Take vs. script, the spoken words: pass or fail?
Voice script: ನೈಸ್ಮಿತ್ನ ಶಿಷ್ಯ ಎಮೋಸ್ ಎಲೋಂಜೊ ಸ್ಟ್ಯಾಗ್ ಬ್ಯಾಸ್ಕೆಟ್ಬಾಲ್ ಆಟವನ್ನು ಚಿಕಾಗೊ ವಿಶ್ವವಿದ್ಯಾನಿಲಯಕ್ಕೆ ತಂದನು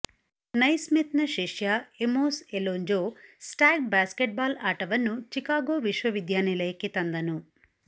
pass